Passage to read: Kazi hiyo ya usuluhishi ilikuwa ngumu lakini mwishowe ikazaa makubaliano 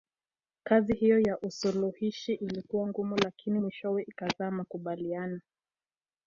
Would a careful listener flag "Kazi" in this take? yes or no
no